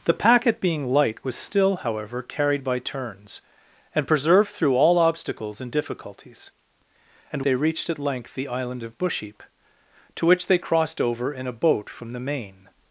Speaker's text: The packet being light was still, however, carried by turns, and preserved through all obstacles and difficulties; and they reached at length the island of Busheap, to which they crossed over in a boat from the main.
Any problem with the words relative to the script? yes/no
no